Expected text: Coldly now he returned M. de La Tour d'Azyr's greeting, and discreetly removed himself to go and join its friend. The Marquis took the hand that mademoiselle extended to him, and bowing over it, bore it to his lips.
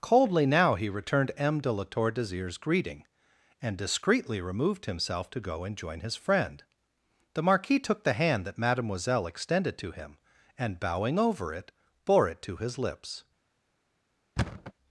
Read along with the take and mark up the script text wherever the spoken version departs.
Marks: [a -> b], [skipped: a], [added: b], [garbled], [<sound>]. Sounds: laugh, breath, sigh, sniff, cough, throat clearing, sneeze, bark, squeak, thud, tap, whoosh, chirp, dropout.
Coldly now he returned M. de La Tour d'Azyr's greeting, and discreetly removed himself to go and join [its -> his] friend. The Marquis took the hand that mademoiselle extended to him, and bowing over it, bore it to his lips. [thud]